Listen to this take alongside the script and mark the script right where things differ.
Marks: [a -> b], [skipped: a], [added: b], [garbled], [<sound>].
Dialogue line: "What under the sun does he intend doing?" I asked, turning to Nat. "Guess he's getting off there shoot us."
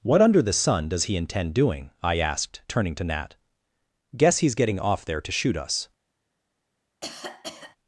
"What under the sun does he intend doing?" I asked, turning to Nat. "Guess he's getting off there [added: to] shoot us." [cough]